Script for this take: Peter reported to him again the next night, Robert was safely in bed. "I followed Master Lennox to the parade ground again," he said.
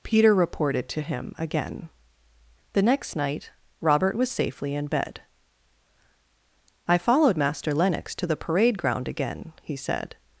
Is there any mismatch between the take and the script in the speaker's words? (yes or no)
no